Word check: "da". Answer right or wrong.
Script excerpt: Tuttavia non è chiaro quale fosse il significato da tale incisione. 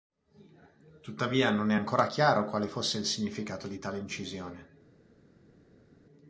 wrong